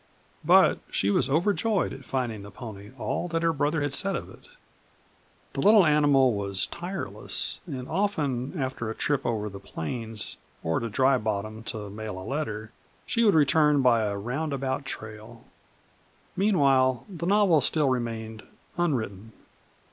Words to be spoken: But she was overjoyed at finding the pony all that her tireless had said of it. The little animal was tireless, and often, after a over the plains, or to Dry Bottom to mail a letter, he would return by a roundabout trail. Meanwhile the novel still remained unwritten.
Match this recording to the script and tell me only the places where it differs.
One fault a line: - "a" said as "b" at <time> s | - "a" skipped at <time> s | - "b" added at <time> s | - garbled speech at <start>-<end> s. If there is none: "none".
- "tireless" said as "brother" at 3.5 s
- "trip" added at 8.9 s
- "he" said as "she" at 13.0 s